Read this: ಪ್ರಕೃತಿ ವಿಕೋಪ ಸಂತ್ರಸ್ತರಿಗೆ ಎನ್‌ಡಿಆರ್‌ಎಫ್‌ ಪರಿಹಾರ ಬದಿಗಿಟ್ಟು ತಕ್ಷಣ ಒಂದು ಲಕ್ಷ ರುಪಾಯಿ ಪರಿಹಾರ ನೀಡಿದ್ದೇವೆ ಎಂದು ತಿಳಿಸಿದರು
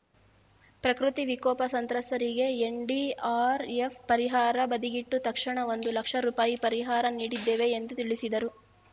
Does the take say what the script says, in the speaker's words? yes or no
yes